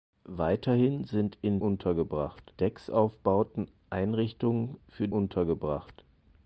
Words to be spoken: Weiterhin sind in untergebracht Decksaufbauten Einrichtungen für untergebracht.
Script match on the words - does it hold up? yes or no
yes